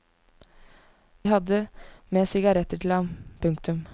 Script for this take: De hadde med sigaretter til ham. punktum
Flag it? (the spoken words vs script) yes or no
no